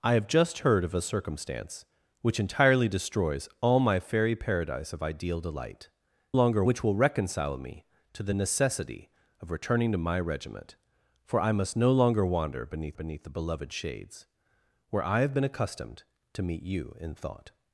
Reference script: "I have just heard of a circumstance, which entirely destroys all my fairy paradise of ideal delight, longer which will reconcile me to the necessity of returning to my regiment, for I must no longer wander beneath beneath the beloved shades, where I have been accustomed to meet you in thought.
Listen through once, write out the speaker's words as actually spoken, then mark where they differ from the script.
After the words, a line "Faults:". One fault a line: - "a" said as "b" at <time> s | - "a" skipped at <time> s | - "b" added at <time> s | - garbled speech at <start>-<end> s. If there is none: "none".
"I have just heard of a circumstance, which entirely destroys all my fairy paradise of ideal delight, longer which will reconcile me to the necessity of returning to my regiment, for I must no longer wander beneath beneath the beloved shades, where I have been accustomed to meet you in thought.
Faults:
none